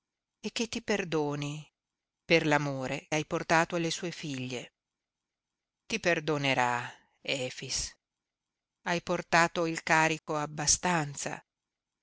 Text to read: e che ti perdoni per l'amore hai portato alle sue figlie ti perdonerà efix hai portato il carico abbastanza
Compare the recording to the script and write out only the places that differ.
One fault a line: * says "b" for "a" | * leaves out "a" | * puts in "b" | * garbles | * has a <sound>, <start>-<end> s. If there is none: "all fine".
* has a dropout, 10.2-10.3 s